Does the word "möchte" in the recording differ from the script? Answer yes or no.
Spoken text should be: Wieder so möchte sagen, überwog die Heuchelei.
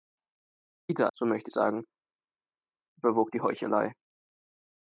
no